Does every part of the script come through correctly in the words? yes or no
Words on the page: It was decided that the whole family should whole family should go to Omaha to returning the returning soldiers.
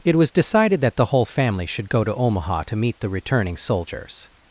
no